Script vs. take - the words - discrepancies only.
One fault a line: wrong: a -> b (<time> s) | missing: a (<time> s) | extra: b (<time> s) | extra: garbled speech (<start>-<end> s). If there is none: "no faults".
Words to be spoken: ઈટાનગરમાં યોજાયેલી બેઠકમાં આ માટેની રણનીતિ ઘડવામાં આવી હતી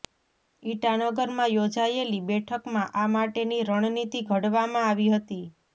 no faults